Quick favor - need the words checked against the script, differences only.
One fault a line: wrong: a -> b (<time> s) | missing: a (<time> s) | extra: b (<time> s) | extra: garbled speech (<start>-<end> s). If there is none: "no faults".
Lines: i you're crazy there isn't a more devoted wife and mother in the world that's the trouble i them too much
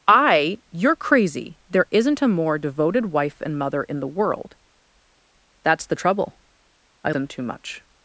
no faults